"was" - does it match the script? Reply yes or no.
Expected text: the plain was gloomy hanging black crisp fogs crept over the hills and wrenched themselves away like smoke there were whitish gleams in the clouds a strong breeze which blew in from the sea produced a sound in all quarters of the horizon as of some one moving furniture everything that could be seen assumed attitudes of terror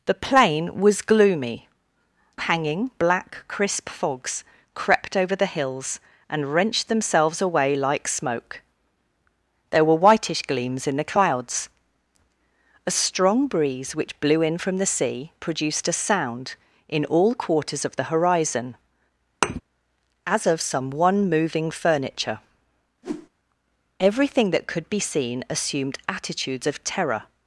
yes